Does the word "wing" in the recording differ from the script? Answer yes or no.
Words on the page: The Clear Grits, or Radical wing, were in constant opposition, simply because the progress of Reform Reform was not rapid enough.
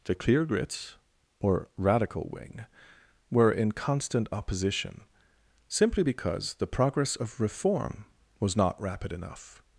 no